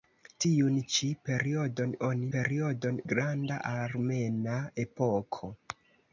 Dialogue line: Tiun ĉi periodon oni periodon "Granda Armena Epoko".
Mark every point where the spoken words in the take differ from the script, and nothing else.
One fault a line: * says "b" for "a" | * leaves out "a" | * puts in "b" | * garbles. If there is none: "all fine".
all fine